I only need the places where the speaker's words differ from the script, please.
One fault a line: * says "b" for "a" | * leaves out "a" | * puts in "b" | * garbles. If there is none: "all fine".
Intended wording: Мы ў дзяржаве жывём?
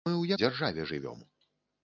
all fine